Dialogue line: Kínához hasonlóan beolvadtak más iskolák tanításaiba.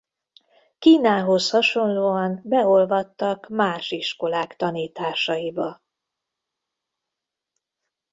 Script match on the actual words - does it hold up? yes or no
yes